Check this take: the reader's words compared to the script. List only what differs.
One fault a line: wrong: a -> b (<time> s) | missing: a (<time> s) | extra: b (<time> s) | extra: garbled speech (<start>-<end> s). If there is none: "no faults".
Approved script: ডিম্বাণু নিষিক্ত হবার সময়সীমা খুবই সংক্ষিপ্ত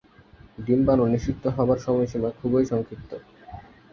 no faults